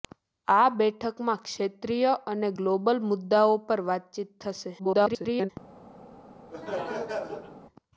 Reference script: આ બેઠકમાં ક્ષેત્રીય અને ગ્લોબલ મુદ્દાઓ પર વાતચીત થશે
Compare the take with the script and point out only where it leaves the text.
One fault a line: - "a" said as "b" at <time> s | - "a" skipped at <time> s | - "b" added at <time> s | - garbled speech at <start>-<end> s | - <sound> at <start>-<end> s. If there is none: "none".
- garbled speech at 4.8-5.5 s
- laugh at 6.5-7.6 s